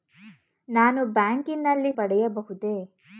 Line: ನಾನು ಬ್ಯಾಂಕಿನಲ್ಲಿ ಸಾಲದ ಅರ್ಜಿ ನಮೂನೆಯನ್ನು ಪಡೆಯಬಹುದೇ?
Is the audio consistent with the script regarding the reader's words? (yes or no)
no